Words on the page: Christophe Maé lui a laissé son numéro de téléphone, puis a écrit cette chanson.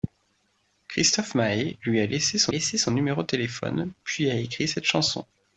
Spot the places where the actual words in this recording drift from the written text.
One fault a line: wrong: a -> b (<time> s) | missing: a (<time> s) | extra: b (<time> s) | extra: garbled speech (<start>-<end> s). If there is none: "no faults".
extra: laissé son (2.5 s)